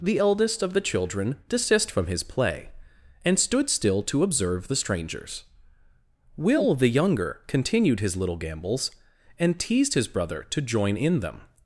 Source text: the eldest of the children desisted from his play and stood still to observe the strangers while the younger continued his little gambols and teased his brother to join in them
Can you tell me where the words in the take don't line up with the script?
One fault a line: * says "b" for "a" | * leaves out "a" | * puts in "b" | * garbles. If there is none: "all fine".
* says "desist" for "desisted"
* says "will" for "while"